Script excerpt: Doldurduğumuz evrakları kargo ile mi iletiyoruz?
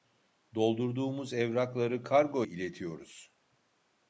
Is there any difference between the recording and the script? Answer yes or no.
yes